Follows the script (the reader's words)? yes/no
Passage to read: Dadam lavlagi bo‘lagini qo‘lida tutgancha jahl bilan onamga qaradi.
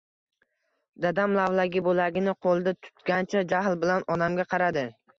yes